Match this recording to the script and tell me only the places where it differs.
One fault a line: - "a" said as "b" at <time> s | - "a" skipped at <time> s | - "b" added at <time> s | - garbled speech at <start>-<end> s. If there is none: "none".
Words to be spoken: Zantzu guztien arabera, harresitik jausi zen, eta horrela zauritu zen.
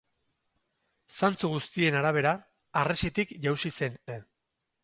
- "eta horrela zauritu" skipped at 4.0 s